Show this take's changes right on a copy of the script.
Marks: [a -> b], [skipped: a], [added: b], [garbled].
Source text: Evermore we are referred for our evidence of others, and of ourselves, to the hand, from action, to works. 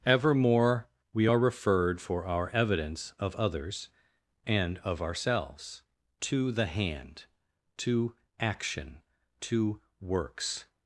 Evermore we are referred for our evidence of others, and of ourselves, to the hand, [from -> to] action, to works.